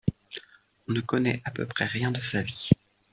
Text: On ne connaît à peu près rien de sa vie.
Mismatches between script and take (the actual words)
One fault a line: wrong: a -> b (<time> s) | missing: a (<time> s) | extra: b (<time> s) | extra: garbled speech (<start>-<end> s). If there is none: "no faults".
no faults